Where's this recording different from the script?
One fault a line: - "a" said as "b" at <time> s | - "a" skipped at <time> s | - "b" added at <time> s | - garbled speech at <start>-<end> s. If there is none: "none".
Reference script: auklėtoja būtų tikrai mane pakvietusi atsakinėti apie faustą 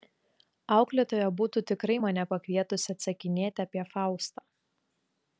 none